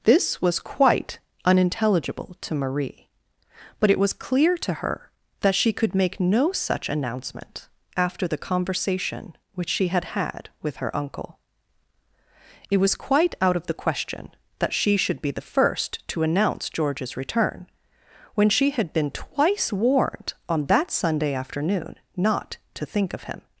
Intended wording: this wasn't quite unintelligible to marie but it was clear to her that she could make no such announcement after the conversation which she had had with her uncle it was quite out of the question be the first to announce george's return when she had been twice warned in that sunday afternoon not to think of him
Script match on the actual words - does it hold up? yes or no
no